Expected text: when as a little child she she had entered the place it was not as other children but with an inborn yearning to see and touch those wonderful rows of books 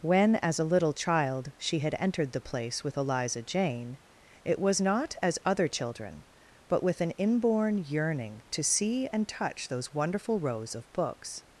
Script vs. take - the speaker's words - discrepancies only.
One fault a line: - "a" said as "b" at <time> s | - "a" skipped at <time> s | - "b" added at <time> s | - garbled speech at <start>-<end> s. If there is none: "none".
- "she" skipped at 1.8 s
- "with eliza jane" added at 2.8 s